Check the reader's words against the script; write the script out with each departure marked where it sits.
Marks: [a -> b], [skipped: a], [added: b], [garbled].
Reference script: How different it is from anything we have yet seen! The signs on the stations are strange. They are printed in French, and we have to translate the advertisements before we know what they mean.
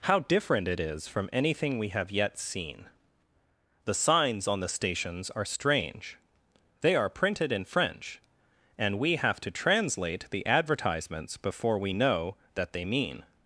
How different it is from anything we have yet seen! The signs on the stations are strange. They are printed in French, and we have to translate the advertisements before we know [what -> that] they mean.